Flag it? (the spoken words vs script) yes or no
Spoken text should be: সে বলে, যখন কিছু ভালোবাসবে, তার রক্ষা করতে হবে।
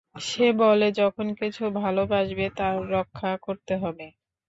no